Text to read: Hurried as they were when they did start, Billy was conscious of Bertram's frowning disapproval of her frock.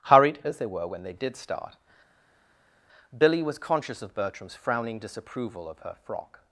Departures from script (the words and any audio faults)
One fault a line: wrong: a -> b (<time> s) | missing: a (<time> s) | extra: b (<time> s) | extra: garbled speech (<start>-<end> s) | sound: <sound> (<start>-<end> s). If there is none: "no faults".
no faults